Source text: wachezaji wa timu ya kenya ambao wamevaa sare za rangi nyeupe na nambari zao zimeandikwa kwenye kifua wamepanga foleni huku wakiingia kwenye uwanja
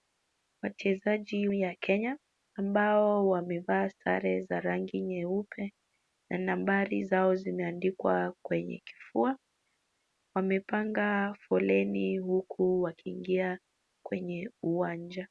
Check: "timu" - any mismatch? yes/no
yes